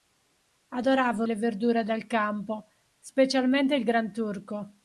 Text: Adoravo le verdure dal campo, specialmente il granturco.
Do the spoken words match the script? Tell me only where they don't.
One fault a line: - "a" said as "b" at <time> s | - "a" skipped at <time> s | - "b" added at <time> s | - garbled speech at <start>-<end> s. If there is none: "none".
none